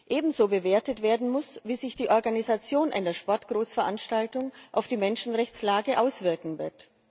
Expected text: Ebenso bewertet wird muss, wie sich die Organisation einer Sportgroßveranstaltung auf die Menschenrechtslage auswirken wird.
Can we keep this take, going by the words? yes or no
no